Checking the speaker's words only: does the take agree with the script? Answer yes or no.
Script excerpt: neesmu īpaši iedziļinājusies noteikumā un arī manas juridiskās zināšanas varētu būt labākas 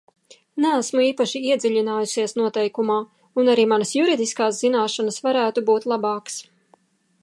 yes